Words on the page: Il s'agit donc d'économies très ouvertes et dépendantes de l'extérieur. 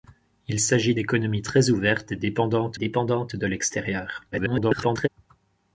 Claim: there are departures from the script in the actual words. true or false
true